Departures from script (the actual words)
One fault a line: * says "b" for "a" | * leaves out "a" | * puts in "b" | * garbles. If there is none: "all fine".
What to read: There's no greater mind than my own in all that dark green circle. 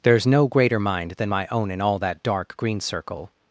all fine